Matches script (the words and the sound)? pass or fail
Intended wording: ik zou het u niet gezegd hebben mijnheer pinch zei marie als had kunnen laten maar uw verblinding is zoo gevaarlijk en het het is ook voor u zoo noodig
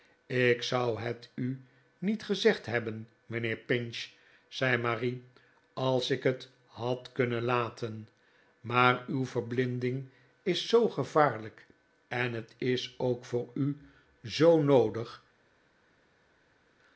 fail